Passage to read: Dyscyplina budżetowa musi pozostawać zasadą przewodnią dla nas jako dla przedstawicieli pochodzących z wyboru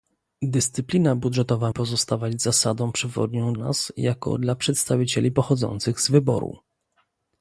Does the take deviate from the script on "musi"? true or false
true